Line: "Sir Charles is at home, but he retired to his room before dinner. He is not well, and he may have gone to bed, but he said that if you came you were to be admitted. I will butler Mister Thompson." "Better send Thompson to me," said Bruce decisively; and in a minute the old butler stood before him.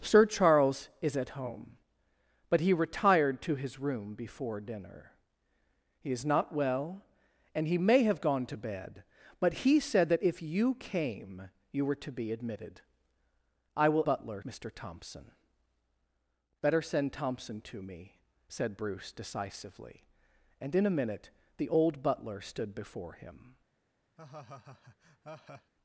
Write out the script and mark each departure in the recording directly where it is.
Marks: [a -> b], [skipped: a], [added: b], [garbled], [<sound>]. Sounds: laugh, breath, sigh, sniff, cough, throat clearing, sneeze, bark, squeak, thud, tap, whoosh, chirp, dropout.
"Sir Charles is at home, but he retired to his room before dinner. He is not well, and he may have gone to bed, but he said that if you came you were to be admitted. I will butler Mister Thompson." "Better send Thompson to me," said Bruce decisively; and in a minute the old butler stood before him. [laugh]